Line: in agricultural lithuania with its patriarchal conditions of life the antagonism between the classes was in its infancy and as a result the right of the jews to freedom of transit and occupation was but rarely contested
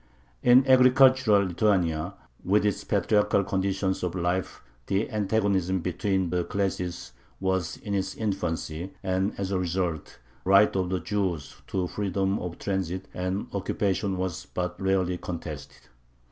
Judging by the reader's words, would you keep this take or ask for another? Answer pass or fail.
fail